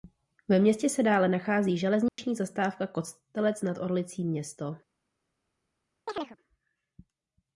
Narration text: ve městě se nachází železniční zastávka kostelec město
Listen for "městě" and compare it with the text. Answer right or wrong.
right